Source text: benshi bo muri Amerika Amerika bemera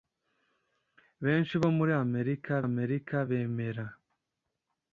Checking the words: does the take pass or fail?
pass